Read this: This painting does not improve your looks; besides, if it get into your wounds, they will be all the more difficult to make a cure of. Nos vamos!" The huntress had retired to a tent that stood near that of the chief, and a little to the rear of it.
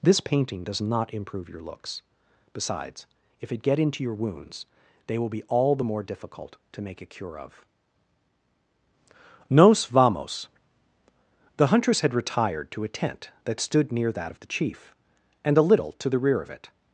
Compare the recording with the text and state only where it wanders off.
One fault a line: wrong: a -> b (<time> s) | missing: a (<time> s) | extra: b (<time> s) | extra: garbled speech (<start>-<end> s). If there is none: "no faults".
no faults